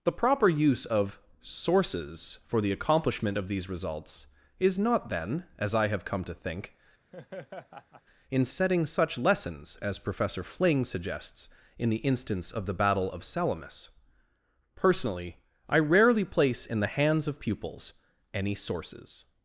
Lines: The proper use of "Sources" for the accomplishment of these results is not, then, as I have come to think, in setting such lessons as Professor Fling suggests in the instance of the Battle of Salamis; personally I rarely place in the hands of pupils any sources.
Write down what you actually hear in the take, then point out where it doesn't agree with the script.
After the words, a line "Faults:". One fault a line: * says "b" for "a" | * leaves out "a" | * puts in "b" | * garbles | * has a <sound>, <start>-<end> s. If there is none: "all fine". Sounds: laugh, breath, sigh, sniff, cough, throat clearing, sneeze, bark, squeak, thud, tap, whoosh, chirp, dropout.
The proper use of "Sources" for the accomplishment of these results is not, then, as I have come to think, in setting such lessons as Professor Fling suggests in the instance of the Battle of Salamis; personally I rarely place in the hands of pupils any sources.
Faults:
* has a laugh, 7.1-8.0 s